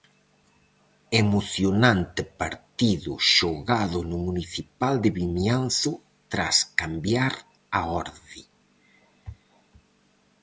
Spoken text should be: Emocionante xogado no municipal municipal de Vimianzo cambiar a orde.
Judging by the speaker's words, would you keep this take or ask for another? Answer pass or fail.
fail